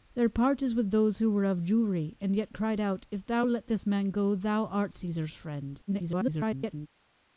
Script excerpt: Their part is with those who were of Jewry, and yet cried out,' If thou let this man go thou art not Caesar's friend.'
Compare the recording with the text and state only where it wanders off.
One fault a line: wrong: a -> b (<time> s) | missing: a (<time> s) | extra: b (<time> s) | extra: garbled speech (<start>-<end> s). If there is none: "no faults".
missing: not (4.9 s)
extra: garbled speech (5.9-6.9 s)